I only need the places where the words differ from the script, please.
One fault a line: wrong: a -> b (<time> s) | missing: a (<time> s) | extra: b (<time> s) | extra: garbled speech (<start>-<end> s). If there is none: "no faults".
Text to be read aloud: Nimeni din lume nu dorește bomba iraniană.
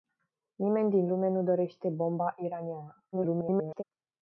extra: garbled speech (3.1-3.8 s)